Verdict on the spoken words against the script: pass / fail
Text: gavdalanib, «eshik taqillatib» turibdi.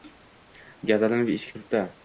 fail